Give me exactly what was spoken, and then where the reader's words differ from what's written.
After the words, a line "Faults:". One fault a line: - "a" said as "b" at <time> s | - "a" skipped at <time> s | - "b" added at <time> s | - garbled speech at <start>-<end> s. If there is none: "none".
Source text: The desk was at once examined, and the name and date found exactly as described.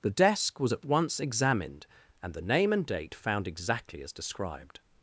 The desk was at once examined, and the name and date found exactly as described.
Faults:
none